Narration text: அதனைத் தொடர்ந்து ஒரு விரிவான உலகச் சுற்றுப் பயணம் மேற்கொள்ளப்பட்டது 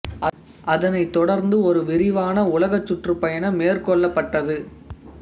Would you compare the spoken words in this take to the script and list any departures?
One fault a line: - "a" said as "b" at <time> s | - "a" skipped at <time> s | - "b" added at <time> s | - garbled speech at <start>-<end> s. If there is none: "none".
none